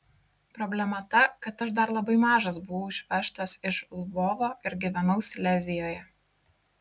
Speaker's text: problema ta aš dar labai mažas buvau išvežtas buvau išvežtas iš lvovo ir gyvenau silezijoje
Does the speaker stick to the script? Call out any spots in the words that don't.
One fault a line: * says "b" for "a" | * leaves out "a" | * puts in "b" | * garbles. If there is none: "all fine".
* puts in "kad"
* leaves out "buvau išvežtas"